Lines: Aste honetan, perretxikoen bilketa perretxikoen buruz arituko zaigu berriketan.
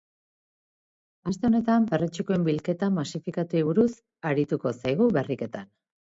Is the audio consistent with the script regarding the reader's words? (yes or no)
no